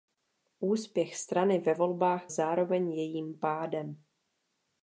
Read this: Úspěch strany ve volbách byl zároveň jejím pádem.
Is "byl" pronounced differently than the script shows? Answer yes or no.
yes